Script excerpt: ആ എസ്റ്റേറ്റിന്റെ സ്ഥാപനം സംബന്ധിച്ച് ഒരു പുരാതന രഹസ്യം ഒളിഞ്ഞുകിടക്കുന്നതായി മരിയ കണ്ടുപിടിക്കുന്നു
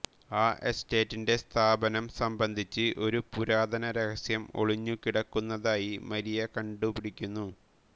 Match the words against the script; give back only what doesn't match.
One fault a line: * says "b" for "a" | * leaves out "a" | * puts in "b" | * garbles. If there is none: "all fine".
all fine